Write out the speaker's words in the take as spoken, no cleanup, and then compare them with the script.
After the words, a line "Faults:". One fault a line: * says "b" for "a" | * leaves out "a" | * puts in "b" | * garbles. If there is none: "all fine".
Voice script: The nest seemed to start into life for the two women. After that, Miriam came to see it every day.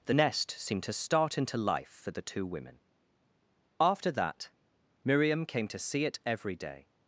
The nest seemed to start into life for the two women. After that, Miriam came to see it every day.
Faults:
all fine